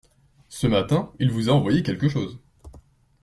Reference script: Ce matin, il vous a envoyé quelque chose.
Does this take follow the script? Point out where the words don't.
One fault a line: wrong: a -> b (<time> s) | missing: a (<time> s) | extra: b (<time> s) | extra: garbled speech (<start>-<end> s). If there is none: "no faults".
no faults